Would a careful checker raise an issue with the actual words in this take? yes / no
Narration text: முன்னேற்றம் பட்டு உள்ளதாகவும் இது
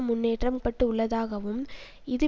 no